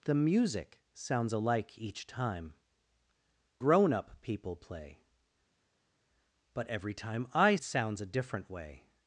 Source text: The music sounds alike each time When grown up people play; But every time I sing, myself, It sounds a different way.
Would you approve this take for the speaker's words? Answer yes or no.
no